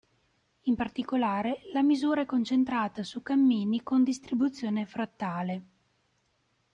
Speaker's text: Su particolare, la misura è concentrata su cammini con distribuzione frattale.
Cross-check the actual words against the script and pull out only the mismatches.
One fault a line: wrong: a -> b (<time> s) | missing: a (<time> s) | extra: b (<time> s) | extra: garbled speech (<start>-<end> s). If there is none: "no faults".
wrong: Su -> In (0.6 s)